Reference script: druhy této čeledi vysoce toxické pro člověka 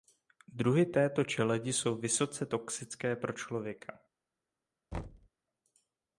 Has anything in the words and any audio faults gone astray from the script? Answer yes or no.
yes